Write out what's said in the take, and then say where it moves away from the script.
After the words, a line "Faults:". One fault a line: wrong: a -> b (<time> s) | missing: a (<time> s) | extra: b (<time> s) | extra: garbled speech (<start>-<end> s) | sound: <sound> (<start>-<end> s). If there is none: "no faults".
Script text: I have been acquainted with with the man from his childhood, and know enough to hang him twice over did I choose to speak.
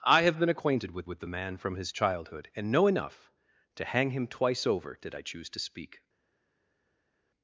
I have been acquainted with with the man from his childhood, and know enough to hang him twice over did I choose to speak.
Faults:
no faults